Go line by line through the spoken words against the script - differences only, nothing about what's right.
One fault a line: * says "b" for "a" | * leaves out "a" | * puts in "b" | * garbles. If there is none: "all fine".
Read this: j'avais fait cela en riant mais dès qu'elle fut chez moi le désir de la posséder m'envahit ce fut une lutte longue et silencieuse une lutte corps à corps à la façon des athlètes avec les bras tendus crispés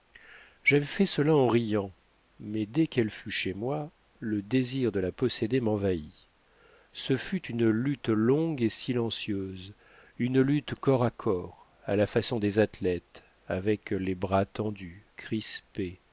all fine